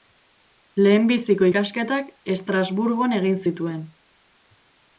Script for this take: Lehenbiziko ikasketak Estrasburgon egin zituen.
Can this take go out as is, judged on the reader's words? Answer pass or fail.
pass